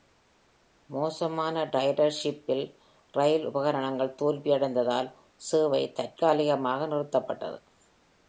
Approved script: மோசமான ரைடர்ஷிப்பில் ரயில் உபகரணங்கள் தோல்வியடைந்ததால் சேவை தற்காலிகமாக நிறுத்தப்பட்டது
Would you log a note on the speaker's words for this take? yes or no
no